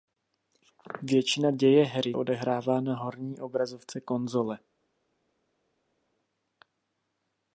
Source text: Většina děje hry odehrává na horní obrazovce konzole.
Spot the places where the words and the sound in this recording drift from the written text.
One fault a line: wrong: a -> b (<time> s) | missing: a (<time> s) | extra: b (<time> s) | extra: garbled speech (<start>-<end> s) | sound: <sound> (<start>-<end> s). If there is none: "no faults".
no faults